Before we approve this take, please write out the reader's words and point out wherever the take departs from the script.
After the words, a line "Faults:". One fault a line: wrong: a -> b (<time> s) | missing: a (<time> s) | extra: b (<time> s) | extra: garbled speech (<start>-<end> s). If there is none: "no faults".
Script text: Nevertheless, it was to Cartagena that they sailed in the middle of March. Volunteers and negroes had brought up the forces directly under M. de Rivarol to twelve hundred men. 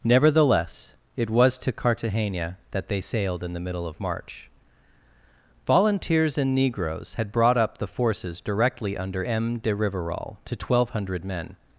Nevertheless, it was to Cartagena that they sailed in the middle of March. Volunteers and negroes had brought up the forces directly under M. de Rivarol to twelve hundred men.
Faults:
no faults